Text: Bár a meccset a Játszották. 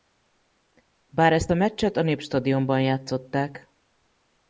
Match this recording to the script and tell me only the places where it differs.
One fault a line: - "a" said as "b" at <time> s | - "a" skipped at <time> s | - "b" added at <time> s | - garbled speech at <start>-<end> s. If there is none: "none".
- "ezt" added at 1.3 s
- "Népstadionban" added at 2.0 s